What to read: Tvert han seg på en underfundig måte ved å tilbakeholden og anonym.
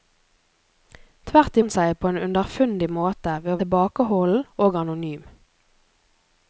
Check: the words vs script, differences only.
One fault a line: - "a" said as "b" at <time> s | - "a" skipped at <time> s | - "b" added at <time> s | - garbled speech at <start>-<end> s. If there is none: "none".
none